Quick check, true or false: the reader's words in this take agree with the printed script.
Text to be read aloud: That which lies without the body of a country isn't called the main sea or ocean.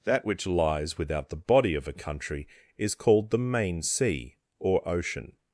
false